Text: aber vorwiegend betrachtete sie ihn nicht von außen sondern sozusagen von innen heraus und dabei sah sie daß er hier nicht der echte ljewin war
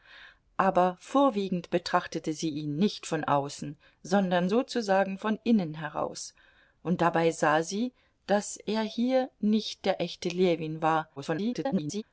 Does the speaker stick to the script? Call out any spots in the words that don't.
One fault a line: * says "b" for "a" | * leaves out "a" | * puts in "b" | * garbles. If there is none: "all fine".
* garbles